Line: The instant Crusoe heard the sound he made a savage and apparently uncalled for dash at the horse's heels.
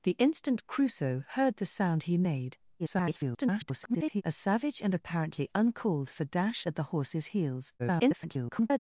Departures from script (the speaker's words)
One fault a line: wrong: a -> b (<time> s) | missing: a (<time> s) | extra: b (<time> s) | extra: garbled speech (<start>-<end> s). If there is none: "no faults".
extra: garbled speech (2.8-4.2 s)
extra: garbled speech (7.8-8.8 s)